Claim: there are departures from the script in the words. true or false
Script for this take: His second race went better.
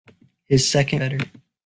true